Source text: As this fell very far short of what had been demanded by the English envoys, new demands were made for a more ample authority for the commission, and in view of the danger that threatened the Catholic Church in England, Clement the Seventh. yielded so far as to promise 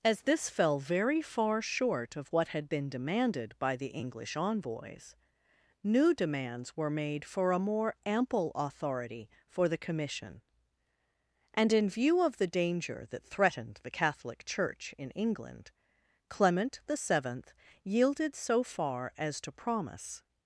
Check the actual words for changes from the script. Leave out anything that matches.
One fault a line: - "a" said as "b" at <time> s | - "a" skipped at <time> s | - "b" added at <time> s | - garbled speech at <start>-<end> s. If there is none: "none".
none